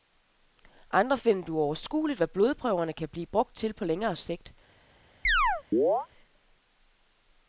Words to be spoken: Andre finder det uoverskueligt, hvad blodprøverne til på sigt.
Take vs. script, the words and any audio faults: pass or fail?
fail